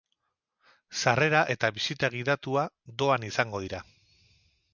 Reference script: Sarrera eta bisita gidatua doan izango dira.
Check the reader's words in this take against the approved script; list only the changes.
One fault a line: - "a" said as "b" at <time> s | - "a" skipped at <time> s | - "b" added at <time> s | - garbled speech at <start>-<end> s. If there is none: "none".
none